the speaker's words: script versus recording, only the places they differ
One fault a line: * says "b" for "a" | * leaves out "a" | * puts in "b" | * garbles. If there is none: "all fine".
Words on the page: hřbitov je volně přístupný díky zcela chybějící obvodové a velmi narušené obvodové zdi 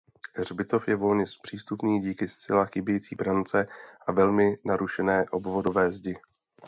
* says "brance" for "obvodové"